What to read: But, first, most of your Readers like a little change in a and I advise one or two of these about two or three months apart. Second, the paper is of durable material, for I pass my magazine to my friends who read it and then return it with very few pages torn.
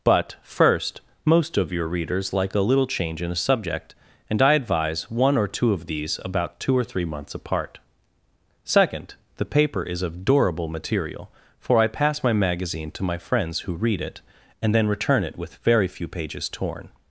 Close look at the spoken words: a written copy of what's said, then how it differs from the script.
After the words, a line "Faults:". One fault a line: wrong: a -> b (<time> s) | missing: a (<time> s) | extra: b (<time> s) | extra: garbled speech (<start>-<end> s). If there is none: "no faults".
But, first, most of your Readers like a little change in a subject and I advise one or two of these about two or three months apart. Second, the paper is of durable material, for I pass my magazine to my friends who read it and then return it with very few pages torn.
Faults:
extra: subject (3.4 s)